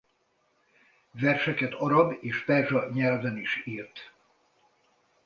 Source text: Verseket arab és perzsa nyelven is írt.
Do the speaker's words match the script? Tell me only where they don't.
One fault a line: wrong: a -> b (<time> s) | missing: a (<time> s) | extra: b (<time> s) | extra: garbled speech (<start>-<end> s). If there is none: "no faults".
no faults